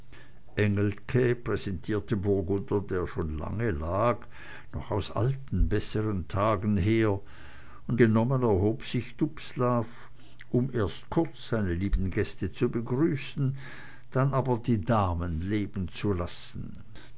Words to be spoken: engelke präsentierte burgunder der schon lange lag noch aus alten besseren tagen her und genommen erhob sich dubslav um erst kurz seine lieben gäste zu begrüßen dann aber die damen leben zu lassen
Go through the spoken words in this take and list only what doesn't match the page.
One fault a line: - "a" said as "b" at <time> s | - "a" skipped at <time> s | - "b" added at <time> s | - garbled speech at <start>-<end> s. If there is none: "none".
none